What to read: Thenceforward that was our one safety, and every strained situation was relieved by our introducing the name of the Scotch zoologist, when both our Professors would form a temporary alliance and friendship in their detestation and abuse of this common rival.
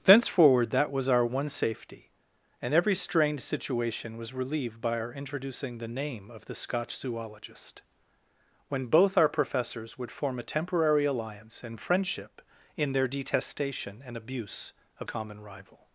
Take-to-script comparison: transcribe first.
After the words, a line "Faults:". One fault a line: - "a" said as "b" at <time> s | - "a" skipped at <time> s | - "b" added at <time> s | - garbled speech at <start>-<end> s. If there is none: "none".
Thenceforward that was our one safety, and every strained situation was relieved by our introducing the name of the Scotch zoologist, when both our Professors would form a temporary alliance and friendship in their detestation and abuse of common rival.
Faults:
- "this" skipped at 15.1 s